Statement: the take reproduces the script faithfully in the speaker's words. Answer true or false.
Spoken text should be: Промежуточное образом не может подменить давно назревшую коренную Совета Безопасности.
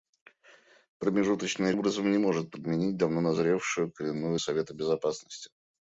true